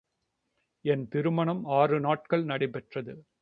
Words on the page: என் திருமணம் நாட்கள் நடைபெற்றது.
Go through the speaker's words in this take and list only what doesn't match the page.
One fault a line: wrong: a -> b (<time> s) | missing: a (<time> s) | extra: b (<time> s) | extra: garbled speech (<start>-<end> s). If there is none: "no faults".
extra: ஆறு (1.6 s)